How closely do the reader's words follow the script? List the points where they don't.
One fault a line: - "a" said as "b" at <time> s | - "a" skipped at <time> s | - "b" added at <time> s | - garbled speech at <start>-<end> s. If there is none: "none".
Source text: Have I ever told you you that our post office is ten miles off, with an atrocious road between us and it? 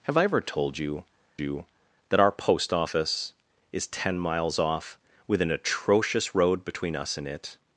none